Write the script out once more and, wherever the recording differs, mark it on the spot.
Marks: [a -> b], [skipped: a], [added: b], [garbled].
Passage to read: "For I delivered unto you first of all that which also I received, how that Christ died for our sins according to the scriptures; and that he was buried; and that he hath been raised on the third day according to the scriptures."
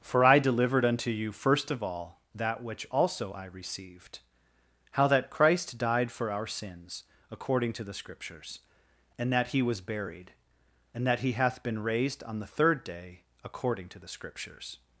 "For I delivered unto you first of all that which also I received, how that Christ died for our sins according to the scriptures; and that he was buried; and that he hath been raised on the third day according to the scriptures."